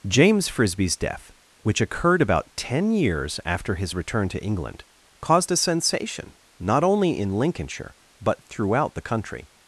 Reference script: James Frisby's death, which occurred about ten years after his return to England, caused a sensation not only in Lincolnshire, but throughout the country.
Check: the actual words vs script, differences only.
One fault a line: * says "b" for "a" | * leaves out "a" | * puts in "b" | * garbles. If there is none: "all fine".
all fine